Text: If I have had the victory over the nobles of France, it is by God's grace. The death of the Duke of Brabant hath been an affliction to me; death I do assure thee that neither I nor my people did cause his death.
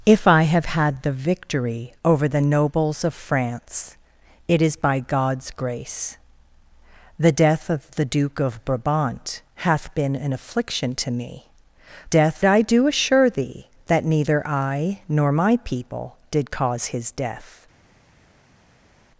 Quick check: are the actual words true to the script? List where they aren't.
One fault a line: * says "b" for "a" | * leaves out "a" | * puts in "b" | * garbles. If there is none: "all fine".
all fine